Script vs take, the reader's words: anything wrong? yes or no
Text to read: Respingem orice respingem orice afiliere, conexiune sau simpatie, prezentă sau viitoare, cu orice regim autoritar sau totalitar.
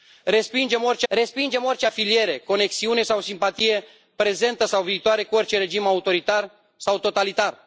no